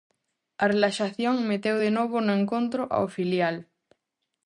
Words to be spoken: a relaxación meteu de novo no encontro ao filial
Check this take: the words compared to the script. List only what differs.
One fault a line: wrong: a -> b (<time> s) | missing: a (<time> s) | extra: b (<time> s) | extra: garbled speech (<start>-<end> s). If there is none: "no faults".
no faults